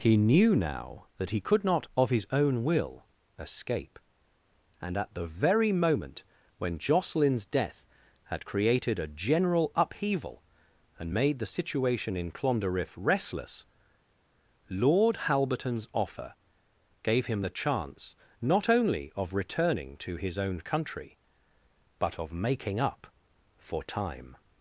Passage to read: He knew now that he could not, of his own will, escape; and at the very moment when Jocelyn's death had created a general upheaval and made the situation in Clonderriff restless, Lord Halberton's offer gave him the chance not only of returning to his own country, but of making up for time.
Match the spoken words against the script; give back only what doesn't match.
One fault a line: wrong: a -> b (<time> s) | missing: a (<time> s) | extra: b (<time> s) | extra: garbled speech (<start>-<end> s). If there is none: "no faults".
no faults